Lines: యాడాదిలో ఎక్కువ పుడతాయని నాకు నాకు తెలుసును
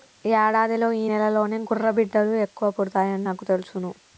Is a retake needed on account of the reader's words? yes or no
yes